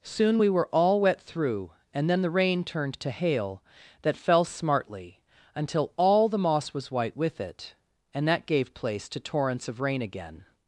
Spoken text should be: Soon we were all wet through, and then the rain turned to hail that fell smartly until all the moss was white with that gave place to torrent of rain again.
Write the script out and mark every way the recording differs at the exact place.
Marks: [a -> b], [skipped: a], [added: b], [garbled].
Soon we were all wet through, and then the rain turned to hail that fell smartly until all the moss was white with [added: it and] that gave place to [torrent -> torrents] of rain again.